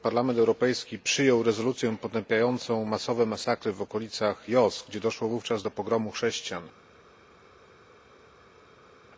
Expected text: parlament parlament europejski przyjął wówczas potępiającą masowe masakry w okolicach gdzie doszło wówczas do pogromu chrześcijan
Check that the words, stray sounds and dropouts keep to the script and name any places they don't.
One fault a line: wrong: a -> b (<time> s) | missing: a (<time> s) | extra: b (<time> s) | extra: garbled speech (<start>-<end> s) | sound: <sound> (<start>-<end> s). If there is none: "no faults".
missing: parlament (0.4 s)
wrong: wówczas -> rezolucję (1.4 s)
extra: jos (4.5 s)